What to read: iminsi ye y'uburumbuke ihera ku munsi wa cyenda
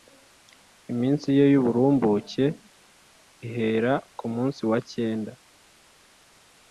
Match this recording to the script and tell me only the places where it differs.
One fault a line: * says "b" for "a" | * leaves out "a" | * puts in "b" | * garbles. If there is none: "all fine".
all fine